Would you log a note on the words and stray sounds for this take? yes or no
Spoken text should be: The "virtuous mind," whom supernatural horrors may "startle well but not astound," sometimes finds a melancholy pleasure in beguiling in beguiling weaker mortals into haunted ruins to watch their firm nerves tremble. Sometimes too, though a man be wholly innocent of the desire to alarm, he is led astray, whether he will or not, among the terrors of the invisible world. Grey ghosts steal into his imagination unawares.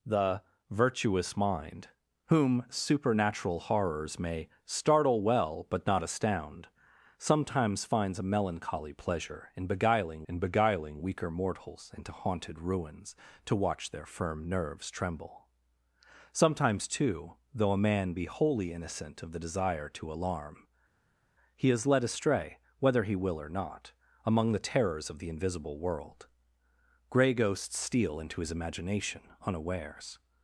no